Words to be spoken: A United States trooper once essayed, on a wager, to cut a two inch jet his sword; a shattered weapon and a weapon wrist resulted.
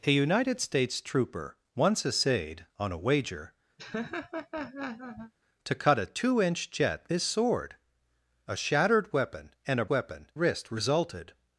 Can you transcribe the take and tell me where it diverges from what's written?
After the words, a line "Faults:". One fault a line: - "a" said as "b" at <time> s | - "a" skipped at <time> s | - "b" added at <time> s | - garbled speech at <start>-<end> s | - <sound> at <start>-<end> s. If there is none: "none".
A United States trooper once essayed, on a wager, to cut a two inch jet his sword; a shattered weapon and a weapon wrist resulted.
Faults:
- laugh at 3.8-5.3 s